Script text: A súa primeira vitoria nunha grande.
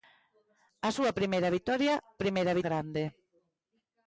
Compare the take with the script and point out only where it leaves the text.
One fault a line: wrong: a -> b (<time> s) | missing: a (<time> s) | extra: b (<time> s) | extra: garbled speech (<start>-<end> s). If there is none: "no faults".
wrong: nunha -> primeira (2.2 s)